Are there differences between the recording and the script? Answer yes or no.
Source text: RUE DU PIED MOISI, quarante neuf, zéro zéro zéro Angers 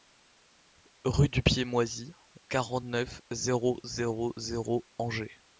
no